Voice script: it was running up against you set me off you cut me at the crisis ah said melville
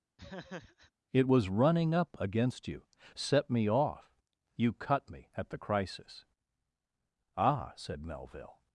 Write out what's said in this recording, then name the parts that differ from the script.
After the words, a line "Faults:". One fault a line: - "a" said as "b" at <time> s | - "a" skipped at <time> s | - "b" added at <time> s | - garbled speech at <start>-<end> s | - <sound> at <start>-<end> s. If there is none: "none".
it was running up against you set me off you cut me at the crisis ah said melville
Faults:
- laugh at 0.2-0.9 s